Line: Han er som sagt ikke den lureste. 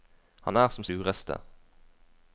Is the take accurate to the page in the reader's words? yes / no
no